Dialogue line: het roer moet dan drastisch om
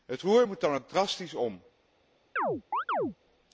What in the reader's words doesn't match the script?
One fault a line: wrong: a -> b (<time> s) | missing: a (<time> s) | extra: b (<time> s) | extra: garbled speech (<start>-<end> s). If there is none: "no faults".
extra: ook (0.7 s)